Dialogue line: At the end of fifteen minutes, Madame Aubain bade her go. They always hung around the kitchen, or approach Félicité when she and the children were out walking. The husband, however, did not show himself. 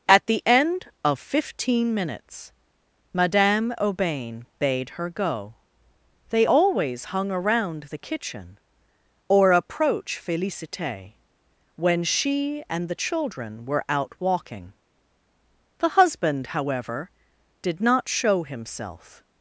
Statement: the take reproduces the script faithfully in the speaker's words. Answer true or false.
true